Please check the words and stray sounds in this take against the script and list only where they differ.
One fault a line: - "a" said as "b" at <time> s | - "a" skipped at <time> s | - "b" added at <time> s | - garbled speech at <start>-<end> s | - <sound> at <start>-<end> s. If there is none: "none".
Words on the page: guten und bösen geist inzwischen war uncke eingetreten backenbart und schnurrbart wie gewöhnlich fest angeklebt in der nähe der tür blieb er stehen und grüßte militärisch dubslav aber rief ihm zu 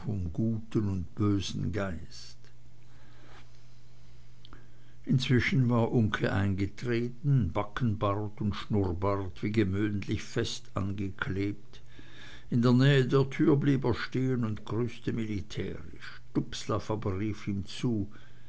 none